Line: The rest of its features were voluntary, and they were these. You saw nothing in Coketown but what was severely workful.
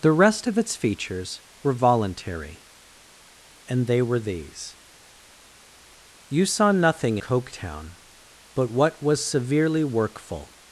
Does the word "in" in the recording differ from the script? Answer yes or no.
yes